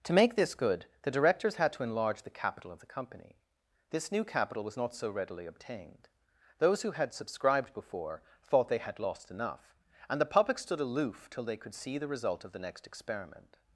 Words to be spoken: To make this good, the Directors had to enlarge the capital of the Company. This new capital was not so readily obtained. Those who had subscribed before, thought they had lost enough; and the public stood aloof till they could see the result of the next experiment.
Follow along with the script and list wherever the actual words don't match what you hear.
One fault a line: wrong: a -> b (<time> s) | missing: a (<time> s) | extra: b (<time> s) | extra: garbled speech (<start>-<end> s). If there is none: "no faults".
no faults